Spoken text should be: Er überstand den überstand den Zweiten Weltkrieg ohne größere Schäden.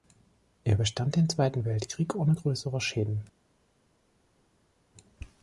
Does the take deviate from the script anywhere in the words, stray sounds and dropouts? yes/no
yes